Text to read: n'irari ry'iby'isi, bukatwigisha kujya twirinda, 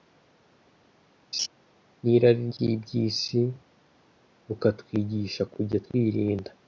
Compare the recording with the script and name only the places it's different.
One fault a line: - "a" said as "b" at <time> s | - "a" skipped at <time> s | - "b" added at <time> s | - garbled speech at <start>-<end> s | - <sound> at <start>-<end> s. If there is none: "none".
- laugh at 1.3-1.5 s